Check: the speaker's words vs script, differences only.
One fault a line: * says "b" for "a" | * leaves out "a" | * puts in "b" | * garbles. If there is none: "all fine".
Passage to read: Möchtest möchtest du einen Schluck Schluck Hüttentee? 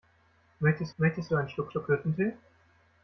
all fine